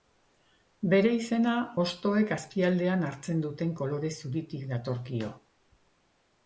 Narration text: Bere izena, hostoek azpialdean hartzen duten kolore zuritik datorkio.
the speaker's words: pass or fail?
pass